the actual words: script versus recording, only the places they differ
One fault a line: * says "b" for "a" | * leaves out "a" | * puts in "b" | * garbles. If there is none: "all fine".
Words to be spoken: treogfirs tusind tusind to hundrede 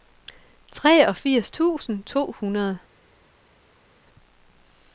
* leaves out "tusind"